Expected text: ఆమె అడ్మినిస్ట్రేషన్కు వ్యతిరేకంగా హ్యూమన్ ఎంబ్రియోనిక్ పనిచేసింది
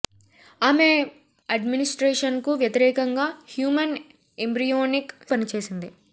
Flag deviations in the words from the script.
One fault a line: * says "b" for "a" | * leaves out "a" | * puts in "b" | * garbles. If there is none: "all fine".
all fine